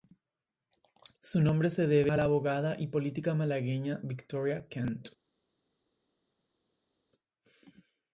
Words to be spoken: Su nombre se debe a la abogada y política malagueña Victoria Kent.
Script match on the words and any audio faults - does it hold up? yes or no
yes